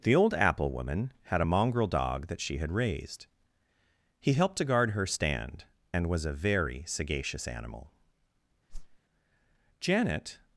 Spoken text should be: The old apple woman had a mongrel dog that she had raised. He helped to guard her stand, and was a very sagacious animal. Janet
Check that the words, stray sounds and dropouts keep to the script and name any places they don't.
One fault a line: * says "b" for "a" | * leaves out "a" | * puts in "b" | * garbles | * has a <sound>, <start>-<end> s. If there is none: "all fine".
* has a whoosh, 8.7-9.0 s